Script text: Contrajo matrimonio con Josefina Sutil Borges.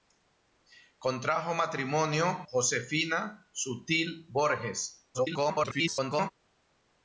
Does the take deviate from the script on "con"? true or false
true